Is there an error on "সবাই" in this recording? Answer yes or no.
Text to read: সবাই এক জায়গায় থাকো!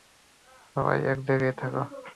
no